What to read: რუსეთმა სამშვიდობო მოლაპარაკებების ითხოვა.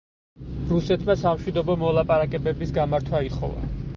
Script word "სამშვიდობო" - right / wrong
right